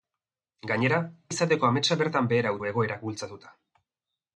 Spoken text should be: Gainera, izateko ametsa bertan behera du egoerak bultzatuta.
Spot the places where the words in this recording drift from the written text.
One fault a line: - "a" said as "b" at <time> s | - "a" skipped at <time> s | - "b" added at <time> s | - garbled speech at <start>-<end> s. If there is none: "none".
none